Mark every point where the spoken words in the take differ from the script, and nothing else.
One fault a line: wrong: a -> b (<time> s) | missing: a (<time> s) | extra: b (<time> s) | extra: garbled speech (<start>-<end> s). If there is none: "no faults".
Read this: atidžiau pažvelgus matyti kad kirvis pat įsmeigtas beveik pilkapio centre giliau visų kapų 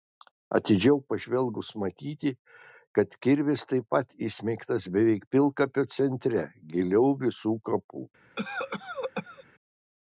extra: taip (3.7 s)